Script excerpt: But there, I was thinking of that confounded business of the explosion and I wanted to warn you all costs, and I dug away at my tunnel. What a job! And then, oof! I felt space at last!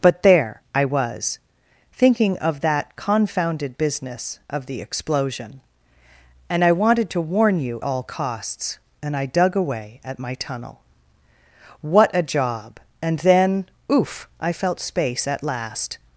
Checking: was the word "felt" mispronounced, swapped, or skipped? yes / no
no